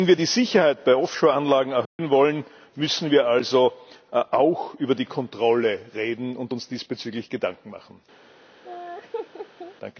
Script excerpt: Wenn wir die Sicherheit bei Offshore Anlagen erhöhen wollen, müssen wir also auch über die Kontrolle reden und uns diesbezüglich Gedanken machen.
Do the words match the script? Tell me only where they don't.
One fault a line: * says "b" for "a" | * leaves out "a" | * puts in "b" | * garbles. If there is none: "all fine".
all fine